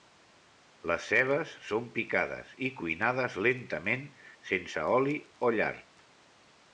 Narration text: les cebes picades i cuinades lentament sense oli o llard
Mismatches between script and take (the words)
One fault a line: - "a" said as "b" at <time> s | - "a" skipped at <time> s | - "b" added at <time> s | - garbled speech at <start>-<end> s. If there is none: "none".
- "són" added at 1.7 s